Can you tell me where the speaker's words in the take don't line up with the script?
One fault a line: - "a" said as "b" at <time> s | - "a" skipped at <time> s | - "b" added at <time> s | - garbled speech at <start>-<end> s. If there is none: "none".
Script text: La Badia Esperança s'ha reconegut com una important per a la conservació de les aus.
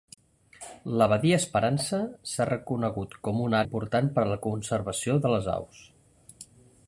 none